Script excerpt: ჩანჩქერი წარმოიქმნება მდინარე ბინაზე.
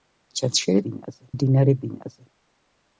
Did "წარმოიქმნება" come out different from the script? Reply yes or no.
yes